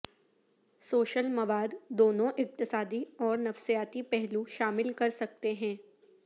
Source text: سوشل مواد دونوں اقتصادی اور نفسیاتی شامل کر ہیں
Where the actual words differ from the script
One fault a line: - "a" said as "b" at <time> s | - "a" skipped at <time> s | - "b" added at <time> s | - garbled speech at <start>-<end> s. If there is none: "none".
- "پہلو" added at 4.1 s
- "سکتے" added at 5.1 s